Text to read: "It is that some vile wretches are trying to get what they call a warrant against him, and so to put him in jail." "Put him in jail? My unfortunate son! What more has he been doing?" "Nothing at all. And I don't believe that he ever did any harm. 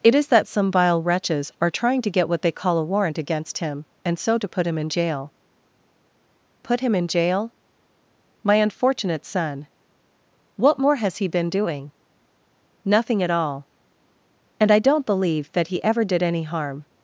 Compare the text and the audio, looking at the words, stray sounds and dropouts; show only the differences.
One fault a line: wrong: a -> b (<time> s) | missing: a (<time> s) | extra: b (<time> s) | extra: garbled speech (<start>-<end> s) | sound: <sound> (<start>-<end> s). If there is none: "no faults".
no faults